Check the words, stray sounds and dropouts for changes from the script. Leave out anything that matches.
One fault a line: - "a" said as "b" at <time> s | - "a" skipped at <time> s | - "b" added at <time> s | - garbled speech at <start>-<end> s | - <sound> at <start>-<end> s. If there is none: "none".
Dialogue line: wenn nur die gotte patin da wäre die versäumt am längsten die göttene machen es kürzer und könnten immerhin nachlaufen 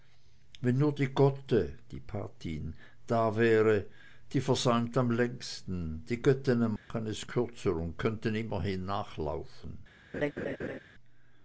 - dropout at 6.8-6.9 s
- laugh at 10.1-10.8 s